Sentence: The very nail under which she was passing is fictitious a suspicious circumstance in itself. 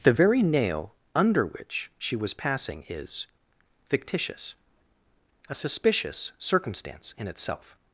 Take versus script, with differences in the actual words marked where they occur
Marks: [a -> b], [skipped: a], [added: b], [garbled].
The very nail under which she was passing is fictitious a suspicious circumstance in itself.